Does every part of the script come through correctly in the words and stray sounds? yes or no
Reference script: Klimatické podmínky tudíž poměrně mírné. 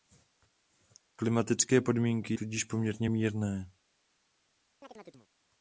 no